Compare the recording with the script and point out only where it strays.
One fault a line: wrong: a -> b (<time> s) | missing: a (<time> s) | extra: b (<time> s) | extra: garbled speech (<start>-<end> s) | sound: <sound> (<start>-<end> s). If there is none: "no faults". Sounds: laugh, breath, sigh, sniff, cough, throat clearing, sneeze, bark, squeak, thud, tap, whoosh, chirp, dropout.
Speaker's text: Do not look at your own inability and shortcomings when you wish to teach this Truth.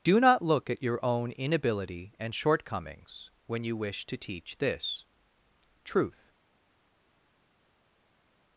no faults